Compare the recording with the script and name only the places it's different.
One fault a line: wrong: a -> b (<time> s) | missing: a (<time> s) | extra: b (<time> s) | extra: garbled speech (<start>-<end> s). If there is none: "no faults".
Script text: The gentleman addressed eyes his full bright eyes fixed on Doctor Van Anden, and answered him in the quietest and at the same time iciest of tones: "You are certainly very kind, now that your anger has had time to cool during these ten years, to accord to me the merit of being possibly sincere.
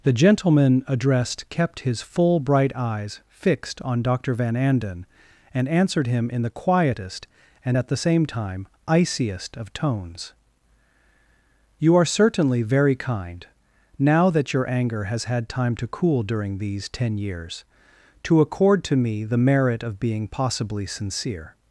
wrong: eyes -> kept (1.5 s)